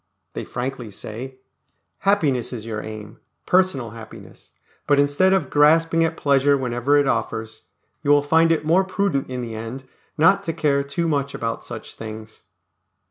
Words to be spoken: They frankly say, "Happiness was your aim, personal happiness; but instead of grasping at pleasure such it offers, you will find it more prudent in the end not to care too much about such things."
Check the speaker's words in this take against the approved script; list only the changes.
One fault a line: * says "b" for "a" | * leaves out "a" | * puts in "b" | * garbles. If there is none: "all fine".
* says "is" for "was"
* says "whenever" for "such"